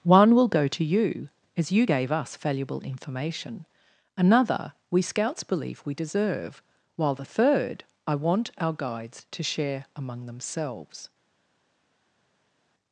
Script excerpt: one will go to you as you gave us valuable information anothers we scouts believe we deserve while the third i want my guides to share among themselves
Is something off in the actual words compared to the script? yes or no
yes